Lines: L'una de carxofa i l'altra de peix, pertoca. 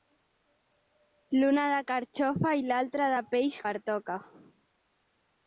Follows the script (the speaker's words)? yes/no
yes